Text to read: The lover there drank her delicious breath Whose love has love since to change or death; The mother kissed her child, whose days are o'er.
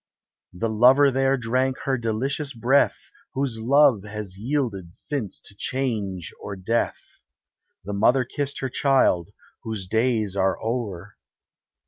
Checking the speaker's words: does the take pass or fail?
fail